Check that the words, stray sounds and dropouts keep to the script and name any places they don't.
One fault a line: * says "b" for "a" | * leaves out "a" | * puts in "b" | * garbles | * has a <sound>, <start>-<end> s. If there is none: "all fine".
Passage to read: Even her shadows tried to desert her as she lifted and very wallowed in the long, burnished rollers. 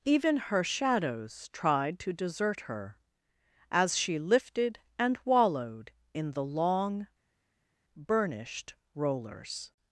* leaves out "very"